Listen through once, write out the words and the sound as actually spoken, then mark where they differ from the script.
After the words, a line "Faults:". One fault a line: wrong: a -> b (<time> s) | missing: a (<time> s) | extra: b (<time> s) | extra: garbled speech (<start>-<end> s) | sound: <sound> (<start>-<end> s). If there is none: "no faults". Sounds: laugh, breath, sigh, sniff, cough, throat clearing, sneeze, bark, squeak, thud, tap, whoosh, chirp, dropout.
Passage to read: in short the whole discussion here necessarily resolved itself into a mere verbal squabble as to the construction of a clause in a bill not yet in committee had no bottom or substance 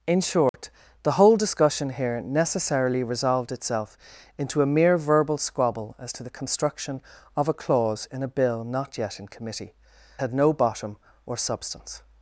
in short the whole discussion here necessarily resolved itself into a mere verbal squabble as to the construction of a clause in a bill not yet in committee had no bottom or substance
Faults:
sound: dropout (0.5-0.5 s)